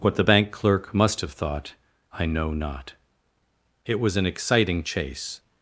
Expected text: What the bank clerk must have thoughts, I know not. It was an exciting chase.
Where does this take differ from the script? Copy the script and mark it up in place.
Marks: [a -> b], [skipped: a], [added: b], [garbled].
What the bank clerk must have [thoughts, -> thought] I know not. It was an exciting chase.